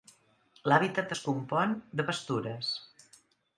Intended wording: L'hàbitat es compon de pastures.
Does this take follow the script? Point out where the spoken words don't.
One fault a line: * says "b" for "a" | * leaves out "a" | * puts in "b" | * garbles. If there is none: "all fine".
all fine